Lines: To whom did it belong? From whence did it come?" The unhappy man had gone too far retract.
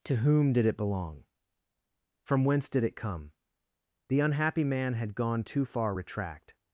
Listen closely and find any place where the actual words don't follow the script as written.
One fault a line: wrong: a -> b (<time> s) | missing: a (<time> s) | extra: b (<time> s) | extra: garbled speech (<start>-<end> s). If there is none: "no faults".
no faults